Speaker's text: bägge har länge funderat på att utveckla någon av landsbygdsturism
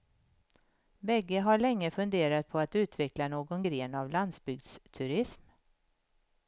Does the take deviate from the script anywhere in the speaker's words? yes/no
yes